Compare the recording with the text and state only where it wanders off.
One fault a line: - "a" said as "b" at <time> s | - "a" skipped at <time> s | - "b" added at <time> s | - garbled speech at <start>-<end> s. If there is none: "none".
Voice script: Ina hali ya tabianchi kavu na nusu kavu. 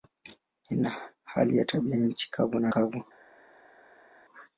- "nusu" skipped at 2.7 s